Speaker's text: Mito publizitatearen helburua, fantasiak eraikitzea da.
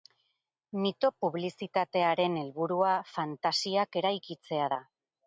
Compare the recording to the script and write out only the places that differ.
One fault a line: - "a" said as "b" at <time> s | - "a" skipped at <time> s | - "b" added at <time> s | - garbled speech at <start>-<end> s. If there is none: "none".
none